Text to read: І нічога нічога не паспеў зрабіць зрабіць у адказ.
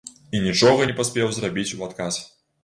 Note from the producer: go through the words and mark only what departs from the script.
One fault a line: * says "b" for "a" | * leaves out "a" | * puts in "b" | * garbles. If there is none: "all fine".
* leaves out "нічога"
* leaves out "зрабіць"